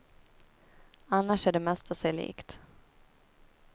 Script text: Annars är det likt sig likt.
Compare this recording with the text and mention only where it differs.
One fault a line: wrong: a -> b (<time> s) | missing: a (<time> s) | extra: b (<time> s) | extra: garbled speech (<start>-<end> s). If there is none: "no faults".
wrong: likt -> mesta (1.6 s)